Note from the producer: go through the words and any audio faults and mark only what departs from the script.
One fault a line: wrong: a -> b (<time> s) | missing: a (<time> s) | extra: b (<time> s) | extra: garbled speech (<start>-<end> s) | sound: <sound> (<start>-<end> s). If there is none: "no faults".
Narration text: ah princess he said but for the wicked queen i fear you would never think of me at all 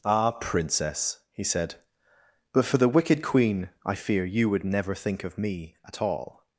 no faults